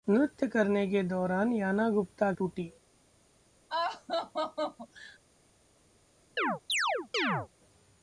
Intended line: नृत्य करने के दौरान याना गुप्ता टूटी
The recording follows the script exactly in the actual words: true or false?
true